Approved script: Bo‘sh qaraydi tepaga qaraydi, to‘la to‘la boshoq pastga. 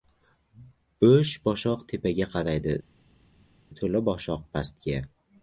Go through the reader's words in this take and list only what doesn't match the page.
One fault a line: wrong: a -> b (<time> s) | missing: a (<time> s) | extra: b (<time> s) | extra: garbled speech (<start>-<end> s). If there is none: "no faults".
wrong: qaraydi -> boshoq (1.5 s)
missing: to‘la (4.0 s)